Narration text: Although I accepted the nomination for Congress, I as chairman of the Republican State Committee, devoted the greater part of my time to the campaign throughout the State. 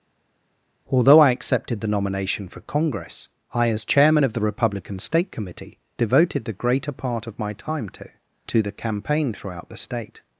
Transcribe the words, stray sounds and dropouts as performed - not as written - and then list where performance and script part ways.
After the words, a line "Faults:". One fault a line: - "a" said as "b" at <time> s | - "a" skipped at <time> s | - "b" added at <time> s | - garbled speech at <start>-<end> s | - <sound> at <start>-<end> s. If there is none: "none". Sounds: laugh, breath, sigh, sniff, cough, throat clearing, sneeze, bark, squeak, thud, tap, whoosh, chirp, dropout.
Although I accepted the nomination for Congress, I as chairman of the Republican State Committee, devoted the greater part of my time to to the campaign throughout the State.
Faults:
- "to" added at 8.5 s